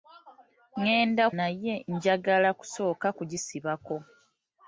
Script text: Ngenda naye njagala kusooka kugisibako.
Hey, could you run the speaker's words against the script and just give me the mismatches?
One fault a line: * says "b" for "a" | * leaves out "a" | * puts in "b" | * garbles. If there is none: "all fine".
all fine